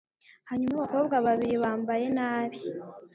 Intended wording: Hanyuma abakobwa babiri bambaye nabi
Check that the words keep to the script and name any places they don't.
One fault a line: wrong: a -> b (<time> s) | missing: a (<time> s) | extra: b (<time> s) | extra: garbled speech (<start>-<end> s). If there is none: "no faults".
no faults